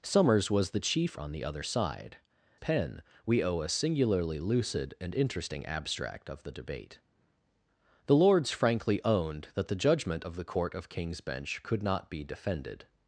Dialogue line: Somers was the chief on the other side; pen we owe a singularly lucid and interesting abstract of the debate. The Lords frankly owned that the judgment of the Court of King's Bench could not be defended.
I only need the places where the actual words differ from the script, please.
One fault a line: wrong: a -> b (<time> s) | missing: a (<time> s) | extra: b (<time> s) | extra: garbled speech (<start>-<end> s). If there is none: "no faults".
no faults